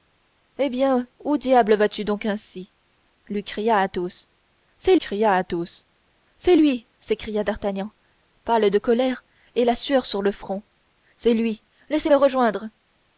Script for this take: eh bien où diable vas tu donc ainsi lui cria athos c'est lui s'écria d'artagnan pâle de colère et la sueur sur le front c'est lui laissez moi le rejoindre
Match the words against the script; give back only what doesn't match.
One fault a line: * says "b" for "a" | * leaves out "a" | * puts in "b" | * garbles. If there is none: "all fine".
* puts in "cria athos c'est"
* leaves out "moi"